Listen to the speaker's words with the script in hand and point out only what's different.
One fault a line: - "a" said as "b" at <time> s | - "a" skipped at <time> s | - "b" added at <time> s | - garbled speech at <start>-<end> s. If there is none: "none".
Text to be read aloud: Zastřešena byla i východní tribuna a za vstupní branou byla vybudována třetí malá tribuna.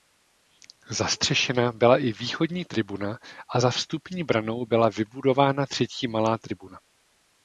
none